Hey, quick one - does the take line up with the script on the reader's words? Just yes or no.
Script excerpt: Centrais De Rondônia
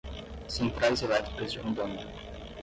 no